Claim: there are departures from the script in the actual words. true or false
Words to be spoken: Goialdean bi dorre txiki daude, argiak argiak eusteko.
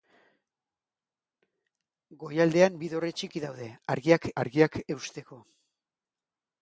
false